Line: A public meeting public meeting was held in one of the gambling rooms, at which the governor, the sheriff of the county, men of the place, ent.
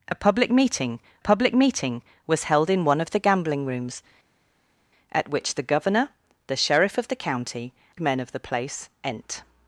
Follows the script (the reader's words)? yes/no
yes